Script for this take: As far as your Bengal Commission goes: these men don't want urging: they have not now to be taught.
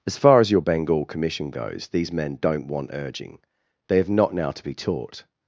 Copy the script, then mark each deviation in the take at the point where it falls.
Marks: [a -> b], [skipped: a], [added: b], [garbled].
As far as your Bengal Commission goes: these men don't want urging: they have not now to be taught.